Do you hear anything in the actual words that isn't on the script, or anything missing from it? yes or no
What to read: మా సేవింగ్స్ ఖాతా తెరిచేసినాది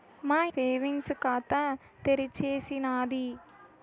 no